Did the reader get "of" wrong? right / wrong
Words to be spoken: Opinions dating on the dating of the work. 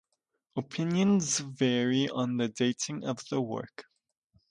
right